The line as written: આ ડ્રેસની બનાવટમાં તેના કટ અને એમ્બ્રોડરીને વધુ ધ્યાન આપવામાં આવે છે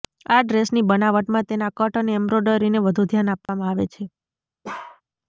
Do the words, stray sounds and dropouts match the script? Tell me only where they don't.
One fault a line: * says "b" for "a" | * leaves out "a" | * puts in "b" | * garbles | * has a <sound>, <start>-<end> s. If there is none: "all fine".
* has a dropout, 3.5-3.5 s
* has a bark, 4.6-5.0 s